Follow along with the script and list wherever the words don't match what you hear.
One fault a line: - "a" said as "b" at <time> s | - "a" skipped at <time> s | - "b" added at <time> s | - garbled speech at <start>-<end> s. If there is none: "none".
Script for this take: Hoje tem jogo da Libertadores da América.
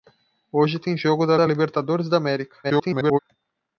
- "da" added at 1.4 s
- garbled speech at 2.6-3.2 s